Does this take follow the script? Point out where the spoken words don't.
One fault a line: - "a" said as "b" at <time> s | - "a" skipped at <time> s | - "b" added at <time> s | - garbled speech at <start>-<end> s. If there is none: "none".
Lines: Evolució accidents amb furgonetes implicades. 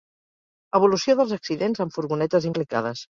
- "dels" added at 1.2 s